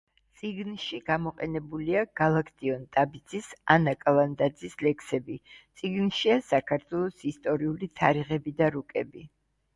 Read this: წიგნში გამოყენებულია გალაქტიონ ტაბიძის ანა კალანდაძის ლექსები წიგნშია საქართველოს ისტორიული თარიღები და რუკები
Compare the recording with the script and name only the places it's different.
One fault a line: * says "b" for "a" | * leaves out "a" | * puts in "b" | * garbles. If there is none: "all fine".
all fine